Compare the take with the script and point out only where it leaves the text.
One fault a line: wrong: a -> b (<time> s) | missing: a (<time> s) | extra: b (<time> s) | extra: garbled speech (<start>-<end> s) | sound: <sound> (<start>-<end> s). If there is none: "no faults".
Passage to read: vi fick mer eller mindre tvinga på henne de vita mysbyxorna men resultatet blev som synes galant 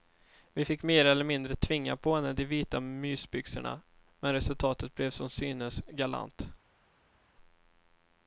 no faults